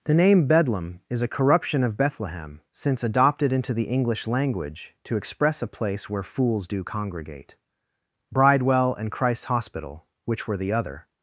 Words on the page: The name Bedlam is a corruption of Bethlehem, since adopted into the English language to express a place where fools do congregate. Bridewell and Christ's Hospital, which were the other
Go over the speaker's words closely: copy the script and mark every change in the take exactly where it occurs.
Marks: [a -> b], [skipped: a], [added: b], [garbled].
The name Bedlam is a corruption of Bethlehem, since adopted into the English language to express a place where fools do congregate. Bridewell and Christ's Hospital, which were the other